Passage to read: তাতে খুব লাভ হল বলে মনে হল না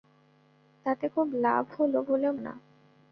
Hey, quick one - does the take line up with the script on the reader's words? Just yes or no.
no